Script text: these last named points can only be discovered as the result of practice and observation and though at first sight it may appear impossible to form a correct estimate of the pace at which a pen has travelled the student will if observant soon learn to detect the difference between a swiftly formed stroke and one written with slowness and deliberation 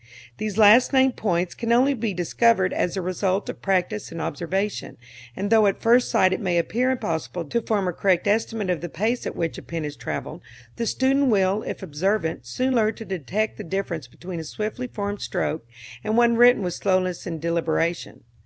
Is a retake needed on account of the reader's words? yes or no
no